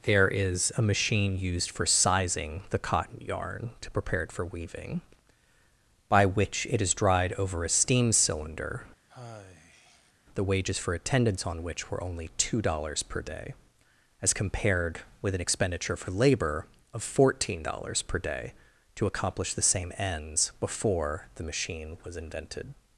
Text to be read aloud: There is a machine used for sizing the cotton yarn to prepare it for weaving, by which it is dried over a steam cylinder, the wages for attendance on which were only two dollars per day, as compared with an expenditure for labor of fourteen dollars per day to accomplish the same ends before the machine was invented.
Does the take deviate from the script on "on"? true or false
false